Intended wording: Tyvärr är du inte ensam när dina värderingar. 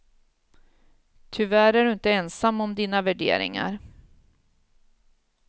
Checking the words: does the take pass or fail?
fail